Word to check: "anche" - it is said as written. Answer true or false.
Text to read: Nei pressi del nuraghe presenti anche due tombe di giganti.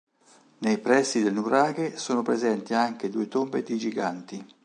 true